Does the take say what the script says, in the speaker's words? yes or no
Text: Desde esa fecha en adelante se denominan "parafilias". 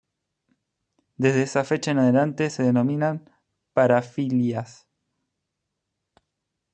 yes